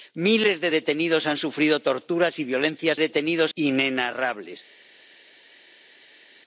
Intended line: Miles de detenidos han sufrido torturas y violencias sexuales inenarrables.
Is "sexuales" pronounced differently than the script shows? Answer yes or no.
yes